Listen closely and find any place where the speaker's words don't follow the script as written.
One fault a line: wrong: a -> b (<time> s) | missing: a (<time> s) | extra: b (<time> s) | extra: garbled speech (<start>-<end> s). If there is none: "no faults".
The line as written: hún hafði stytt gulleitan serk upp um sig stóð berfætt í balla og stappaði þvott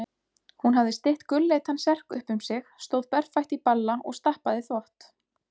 no faults